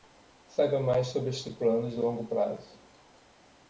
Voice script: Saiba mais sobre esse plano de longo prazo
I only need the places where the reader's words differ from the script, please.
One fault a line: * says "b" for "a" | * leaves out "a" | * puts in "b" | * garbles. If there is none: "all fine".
* says "este" for "esse"